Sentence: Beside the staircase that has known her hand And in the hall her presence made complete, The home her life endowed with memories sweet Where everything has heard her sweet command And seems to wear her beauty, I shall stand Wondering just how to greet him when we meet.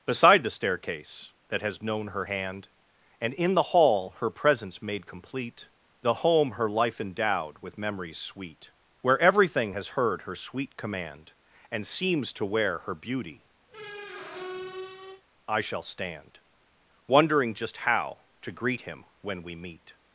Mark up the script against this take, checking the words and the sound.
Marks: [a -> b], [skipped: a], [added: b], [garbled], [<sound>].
Beside the staircase that has known her hand And in the hall her presence made complete, The home her life endowed with memories sweet Where everything has heard her sweet command And seems to wear her beauty, [squeak] I shall stand Wondering just how to greet him when we meet.